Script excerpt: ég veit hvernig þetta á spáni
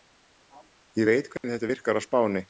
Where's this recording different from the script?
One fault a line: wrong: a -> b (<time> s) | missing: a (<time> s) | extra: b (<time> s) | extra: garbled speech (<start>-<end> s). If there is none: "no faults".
extra: virkar (1.7 s)